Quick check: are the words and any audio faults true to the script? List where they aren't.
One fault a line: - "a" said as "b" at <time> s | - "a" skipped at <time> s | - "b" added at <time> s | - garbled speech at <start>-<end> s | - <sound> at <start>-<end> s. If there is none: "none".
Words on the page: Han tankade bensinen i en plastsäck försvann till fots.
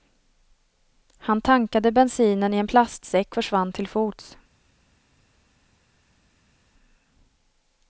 none